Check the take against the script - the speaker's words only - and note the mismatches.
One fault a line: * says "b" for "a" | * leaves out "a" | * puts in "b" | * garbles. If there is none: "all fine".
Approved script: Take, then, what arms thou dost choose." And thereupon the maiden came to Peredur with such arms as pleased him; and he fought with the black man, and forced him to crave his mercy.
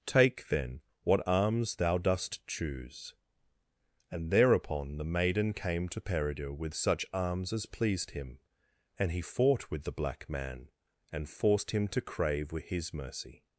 all fine